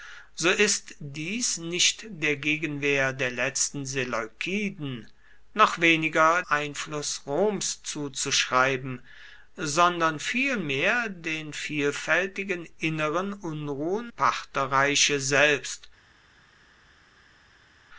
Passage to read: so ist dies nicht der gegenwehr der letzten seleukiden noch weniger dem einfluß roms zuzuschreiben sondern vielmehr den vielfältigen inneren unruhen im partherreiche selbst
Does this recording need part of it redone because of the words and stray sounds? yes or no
yes